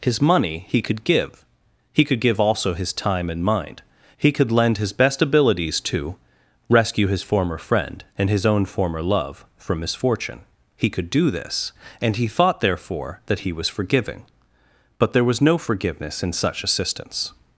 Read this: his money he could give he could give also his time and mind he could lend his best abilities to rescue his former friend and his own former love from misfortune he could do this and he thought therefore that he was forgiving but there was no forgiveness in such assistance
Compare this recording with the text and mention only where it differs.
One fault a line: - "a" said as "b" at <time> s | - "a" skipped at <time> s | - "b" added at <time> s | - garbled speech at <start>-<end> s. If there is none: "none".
none